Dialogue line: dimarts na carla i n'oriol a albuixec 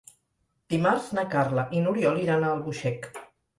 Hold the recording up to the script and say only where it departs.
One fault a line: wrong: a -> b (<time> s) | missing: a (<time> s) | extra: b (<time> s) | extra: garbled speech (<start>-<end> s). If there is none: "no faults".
extra: iran (2.2 s)